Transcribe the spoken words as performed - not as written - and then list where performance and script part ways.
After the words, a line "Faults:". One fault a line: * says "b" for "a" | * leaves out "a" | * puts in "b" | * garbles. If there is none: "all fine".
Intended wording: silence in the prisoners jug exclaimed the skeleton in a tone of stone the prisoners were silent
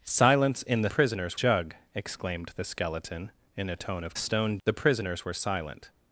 silence in the prisoners jug exclaimed the skeleton in a tone of stone the prisoners were silent
Faults:
all fine